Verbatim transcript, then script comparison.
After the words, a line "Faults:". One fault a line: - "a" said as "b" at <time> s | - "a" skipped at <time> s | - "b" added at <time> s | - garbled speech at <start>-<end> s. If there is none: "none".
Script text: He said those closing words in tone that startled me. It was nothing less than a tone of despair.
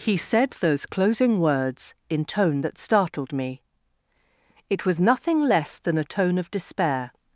He said those closing words in tone that startled me. It was nothing less than a tone of despair.
Faults:
none